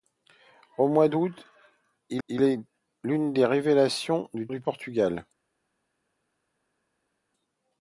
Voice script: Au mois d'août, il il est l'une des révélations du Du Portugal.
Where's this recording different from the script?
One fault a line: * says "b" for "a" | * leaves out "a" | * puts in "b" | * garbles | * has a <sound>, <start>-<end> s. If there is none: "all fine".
all fine